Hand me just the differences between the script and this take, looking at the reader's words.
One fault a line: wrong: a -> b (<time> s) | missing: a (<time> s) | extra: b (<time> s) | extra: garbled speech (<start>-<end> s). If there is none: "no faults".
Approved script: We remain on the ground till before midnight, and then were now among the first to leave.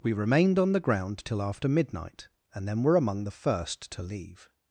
wrong: remain -> remained (0.1 s)
wrong: before -> after (1.4 s)
missing: now (3.0 s)